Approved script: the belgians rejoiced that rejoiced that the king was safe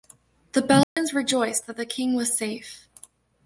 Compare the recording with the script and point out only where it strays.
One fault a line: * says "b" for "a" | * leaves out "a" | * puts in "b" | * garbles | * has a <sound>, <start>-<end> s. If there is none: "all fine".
* has a dropout, 0.8-1.0 s
* leaves out "rejoiced that"